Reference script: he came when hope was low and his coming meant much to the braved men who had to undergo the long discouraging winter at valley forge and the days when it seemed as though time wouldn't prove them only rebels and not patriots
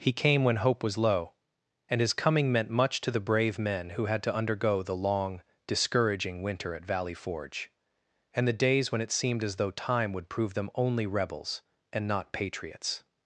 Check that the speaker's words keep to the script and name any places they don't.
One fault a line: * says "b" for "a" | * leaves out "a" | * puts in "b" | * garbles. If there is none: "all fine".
* says "brave" for "braved"
* says "would" for "wouldn't"